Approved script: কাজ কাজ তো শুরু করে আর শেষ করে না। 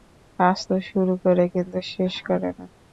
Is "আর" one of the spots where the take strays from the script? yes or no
yes